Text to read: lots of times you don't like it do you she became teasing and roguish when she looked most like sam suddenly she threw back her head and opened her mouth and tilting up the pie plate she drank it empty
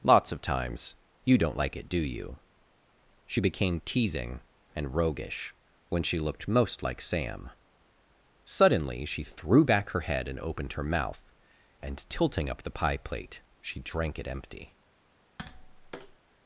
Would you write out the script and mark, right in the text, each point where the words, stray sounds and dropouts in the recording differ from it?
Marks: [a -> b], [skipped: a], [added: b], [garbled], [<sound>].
lots of times you don't like it do you she became teasing and roguish when she looked most like sam suddenly she threw back her head and opened her mouth and tilting up the pie plate she drank it empty [tap]